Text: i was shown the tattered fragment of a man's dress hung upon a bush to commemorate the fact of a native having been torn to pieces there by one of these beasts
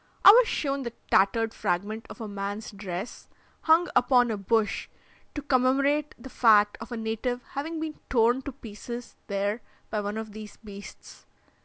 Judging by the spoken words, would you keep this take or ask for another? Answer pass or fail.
pass